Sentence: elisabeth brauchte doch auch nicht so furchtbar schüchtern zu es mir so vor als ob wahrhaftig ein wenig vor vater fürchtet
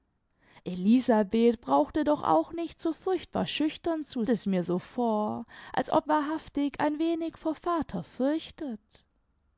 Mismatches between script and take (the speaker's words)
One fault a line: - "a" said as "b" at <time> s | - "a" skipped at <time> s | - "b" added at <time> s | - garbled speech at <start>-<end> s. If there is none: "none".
none